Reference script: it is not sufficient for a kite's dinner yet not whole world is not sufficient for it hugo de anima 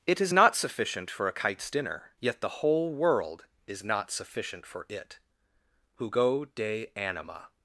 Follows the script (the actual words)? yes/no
no